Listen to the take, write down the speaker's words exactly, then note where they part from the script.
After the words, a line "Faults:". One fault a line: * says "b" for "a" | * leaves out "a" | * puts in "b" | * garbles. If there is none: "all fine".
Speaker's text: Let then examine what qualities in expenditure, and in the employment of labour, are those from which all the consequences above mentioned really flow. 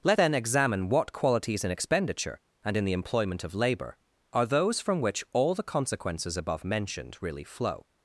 Let then examine what qualities in expenditure, and in the employment of labour, are those from which all the consequences above mentioned really flow.
Faults:
all fine